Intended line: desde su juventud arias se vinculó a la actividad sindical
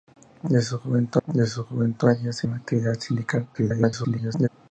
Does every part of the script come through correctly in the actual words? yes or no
no